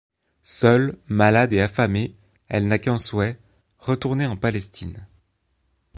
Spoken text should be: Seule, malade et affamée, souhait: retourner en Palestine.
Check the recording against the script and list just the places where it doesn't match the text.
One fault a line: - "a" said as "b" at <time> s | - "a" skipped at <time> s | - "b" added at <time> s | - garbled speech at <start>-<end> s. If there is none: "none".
- "elle n'a qu'un" added at 2.5 s